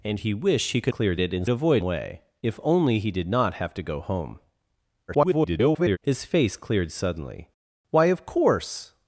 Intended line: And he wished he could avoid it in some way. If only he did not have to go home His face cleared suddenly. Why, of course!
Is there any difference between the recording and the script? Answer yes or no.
yes